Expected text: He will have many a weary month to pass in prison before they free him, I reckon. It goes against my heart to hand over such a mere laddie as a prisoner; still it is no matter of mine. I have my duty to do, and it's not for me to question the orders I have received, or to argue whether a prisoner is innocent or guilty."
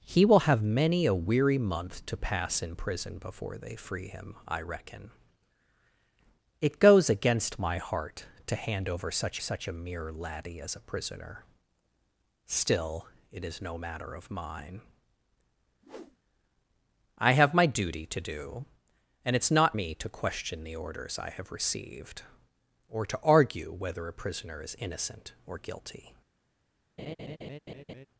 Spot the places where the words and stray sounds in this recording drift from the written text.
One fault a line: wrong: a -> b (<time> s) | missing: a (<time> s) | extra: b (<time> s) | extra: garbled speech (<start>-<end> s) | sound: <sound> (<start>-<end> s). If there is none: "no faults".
extra: such (9.4 s)
sound: whoosh (15.8-16.2 s)
missing: for (19.8 s)
sound: laugh (27.0-28.1 s)